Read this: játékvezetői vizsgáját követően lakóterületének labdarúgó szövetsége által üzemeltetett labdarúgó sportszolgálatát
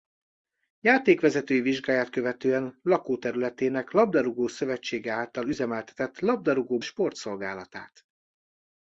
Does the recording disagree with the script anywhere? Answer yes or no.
no